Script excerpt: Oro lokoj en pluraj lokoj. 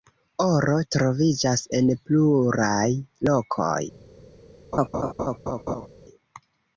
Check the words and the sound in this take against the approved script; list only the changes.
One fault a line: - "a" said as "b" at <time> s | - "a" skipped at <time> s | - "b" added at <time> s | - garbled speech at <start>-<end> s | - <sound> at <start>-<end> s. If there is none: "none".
- "lokoj" said as "troviĝas" at 0.9 s
- laugh at 4.7-5.9 s